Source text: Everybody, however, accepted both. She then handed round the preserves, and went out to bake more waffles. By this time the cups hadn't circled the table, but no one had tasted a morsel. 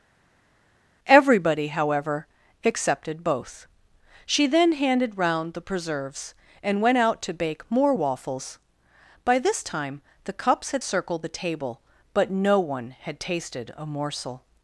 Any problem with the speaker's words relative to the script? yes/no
yes